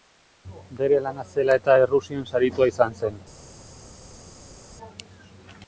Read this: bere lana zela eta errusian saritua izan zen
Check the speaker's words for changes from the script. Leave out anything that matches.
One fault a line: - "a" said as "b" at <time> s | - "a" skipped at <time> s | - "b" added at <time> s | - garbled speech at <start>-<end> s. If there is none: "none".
none